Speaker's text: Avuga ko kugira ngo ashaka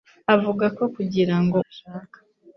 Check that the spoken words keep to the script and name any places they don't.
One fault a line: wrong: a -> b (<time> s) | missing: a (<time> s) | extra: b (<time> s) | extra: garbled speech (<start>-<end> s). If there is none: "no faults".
no faults